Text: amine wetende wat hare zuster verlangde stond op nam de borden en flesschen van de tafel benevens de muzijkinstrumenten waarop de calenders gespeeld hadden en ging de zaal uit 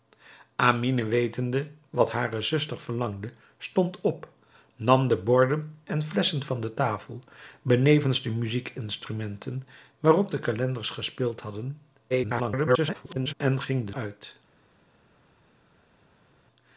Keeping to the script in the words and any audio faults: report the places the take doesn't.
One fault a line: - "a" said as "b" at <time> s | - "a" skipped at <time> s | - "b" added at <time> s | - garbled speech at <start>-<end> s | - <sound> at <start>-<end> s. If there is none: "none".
- garbled speech at 12.1-13.3 s
- "zaal" skipped at 13.9 s